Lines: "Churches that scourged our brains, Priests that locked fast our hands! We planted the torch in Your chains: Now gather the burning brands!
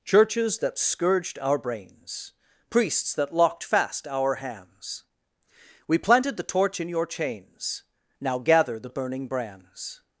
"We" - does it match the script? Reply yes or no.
yes